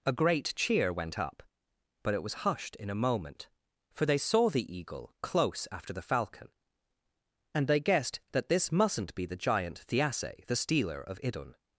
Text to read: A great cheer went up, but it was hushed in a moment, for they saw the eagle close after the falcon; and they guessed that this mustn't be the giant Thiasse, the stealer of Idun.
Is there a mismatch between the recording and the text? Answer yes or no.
no